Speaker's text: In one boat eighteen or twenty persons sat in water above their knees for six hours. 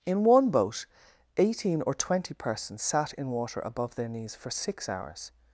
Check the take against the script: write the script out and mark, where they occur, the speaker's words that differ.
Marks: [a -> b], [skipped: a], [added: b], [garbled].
In one boat eighteen or twenty persons sat in water above their knees for six hours.